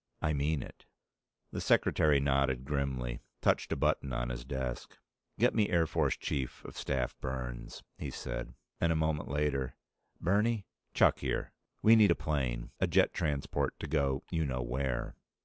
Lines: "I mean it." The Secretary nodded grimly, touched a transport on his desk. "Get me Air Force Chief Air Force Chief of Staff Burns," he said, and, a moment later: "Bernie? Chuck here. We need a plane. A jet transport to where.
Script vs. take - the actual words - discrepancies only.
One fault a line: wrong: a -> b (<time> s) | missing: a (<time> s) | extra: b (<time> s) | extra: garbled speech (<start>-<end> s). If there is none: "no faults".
wrong: transport -> button (3.8 s)
missing: Air Force Chief (6.7 s)
extra: go you know (13.9 s)